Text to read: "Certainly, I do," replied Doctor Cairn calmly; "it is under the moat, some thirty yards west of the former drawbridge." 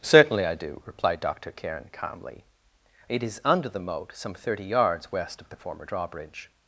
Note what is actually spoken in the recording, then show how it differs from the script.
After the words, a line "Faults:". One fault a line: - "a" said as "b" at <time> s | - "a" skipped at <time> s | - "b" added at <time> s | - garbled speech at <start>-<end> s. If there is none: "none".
"Certainly, I do," replied Doctor Cairn calmly; "it is under the moat, some thirty yards west of the former drawbridge."
Faults:
none